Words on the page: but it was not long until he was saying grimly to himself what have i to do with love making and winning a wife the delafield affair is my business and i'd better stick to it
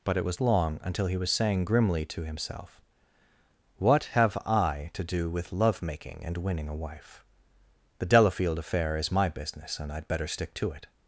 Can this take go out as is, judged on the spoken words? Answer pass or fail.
fail